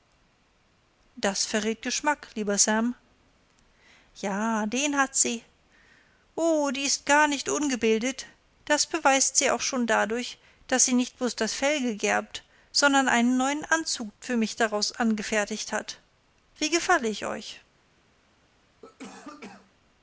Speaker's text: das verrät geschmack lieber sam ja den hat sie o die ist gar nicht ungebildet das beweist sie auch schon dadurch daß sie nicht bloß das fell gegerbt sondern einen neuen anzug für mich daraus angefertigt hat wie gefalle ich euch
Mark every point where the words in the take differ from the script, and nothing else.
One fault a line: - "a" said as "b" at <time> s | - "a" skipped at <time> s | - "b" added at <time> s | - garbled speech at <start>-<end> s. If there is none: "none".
none